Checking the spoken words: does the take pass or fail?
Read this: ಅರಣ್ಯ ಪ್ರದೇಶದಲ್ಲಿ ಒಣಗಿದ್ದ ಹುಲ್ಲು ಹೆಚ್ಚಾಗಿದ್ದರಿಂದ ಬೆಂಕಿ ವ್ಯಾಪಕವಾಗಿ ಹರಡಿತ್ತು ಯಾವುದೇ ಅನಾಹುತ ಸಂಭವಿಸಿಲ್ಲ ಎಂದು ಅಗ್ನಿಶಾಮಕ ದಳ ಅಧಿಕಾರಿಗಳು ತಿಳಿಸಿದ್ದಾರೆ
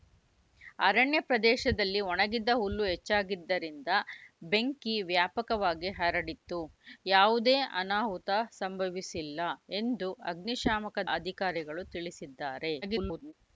fail